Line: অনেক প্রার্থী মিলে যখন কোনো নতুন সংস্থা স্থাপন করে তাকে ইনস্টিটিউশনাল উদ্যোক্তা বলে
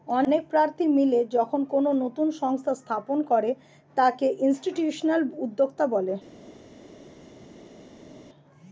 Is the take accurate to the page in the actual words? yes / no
yes